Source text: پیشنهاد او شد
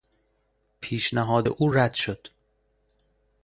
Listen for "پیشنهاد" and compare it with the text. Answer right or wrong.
right